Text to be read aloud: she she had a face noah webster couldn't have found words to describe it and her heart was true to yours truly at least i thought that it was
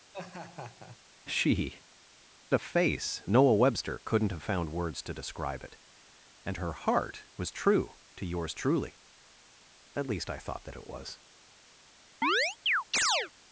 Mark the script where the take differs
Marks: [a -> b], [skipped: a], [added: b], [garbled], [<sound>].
[laugh] she [skipped: she had] a face noah webster couldn't have found words to describe it and her heart was true to yours truly at least i thought that it was [chirp]